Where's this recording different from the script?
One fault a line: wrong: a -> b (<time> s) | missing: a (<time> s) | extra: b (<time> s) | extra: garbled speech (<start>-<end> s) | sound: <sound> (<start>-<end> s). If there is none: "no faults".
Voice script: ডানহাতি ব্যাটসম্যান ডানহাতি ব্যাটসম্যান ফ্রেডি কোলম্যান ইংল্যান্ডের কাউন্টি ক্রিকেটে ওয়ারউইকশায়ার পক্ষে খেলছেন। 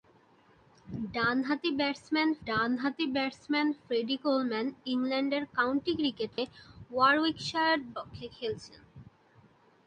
sound: dropout (6.3-6.4 s)